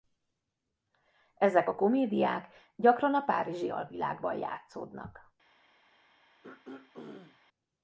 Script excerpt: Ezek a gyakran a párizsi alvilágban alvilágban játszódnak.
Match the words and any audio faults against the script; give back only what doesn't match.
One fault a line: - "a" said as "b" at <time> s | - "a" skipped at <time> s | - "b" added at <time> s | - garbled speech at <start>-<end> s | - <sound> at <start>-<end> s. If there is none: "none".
- "komédiák" added at 1.7 s
- "alvilágban" skipped at 4.4 s
- throat clearing at 6.4-7.4 s